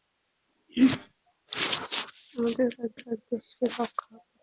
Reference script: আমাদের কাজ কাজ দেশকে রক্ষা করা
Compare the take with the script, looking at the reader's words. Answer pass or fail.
pass